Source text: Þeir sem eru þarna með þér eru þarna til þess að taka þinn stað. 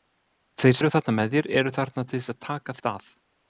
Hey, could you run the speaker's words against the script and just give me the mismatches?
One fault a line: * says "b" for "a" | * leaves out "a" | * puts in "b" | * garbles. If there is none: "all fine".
* leaves out "sem"
* leaves out "þinn"